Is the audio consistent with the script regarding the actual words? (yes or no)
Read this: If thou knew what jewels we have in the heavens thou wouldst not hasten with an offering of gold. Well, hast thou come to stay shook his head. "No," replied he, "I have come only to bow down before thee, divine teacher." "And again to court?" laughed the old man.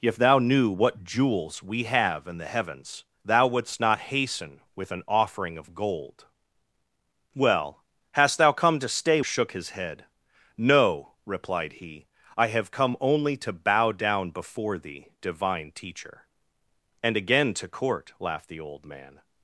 yes